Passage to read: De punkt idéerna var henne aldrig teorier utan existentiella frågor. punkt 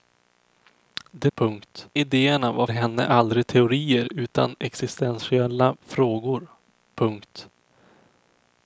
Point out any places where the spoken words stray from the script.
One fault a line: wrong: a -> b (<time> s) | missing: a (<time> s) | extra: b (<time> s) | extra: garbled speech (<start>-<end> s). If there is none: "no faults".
no faults